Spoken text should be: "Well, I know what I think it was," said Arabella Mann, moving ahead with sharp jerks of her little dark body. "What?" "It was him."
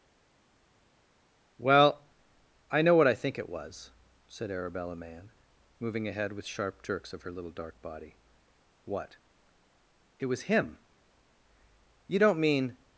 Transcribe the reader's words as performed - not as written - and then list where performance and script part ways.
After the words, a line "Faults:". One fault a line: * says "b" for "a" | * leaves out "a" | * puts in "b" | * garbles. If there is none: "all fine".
"Well, I know what I think it was," said Arabella Mann, moving ahead with sharp jerks of her little dark body. "What?" "It was him." "You don't mean
Faults:
* puts in "You don't mean"